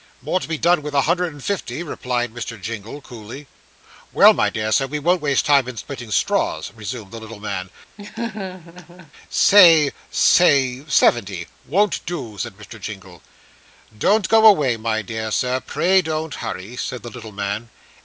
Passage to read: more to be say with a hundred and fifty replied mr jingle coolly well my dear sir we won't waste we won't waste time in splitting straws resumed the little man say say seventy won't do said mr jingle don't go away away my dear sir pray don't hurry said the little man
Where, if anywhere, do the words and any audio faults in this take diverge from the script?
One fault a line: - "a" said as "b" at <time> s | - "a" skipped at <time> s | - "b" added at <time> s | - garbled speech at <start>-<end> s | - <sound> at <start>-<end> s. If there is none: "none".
- "say" said as "done" at 0.6 s
- "we won't waste" skipped at 5.4 s
- laugh at 8.0-9.1 s
- "away" skipped at 14.8 s